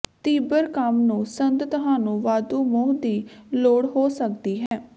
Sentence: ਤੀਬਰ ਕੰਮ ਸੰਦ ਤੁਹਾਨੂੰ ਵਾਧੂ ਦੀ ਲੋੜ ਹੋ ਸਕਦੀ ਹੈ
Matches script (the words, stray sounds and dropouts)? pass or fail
fail